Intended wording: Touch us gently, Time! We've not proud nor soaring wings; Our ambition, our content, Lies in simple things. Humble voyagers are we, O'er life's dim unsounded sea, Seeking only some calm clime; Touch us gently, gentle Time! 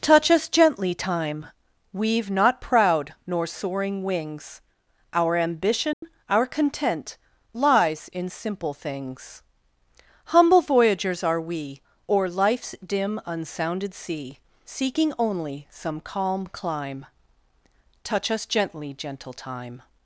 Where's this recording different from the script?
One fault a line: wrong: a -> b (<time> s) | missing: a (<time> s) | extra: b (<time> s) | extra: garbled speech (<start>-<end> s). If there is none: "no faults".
no faults